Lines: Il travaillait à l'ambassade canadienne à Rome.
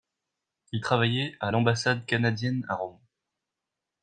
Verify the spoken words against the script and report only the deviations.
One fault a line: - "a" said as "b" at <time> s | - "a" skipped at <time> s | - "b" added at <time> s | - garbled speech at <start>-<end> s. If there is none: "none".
none